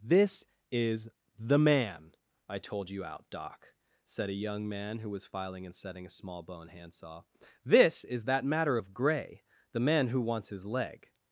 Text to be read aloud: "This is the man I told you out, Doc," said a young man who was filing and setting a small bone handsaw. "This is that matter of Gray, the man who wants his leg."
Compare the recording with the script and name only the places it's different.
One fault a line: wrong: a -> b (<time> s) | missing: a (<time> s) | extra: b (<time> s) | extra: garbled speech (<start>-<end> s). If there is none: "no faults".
no faults